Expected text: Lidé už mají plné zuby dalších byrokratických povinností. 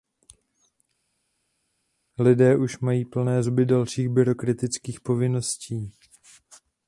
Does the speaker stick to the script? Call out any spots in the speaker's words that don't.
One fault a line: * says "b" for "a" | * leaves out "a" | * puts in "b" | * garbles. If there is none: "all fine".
all fine